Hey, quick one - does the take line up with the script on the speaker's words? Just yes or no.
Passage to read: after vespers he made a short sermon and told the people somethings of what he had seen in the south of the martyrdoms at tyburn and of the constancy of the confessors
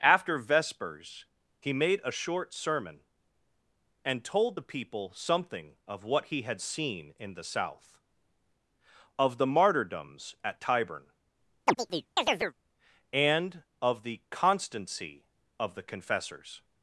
no